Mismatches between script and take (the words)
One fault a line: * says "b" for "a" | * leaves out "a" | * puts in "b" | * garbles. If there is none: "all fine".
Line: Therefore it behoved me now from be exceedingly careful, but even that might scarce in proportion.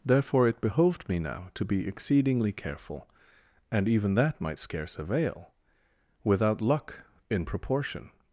* says "to" for "from"
* says "and" for "but"
* puts in "avail without luck"